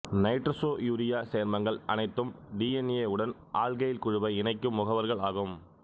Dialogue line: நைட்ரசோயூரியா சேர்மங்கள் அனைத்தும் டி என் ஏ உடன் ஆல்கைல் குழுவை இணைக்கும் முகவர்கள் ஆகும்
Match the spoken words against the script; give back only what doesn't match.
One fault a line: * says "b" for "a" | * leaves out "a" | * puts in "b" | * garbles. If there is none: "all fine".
all fine